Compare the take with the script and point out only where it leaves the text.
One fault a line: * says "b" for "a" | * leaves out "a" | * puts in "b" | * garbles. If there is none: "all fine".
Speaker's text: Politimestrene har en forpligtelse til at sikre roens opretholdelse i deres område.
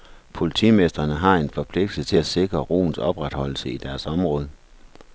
all fine